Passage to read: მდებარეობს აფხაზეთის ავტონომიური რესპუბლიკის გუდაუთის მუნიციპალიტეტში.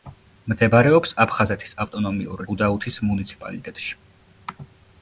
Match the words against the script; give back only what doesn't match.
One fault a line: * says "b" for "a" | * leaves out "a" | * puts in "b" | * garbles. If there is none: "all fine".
* leaves out "რესპუბლიკის"